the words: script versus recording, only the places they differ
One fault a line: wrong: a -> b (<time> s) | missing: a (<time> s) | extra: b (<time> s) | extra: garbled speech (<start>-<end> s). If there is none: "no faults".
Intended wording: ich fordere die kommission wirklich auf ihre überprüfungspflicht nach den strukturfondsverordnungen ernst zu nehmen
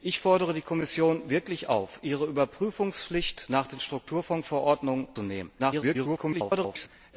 missing: ernst (5.1 s)
extra: garbled speech (5.6-6.9 s)